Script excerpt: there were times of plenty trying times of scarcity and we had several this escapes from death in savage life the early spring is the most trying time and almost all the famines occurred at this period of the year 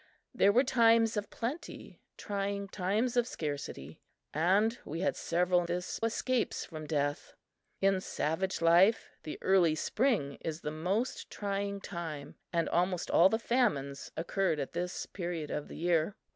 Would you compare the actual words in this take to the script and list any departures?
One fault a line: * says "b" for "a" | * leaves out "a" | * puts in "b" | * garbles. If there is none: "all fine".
all fine